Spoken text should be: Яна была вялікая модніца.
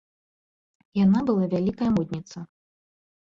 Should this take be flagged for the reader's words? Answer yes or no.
no